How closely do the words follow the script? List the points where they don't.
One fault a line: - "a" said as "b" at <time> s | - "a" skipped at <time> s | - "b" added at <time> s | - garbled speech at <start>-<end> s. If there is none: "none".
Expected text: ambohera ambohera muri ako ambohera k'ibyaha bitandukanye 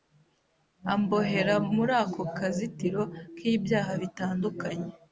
- "ambohera" skipped at 1.6 s
- "ambohera" said as "kazitiro" at 2.4 s